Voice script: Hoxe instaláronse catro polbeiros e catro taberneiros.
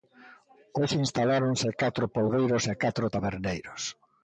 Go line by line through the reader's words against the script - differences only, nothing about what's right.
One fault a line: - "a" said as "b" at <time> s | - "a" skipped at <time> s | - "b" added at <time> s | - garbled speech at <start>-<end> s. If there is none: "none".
none